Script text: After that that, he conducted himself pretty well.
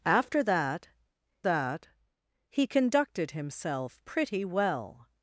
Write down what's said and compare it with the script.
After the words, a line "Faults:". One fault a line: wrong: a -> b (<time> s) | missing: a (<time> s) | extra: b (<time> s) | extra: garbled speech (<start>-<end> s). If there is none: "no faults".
After that that, he conducted himself pretty well.
Faults:
no faults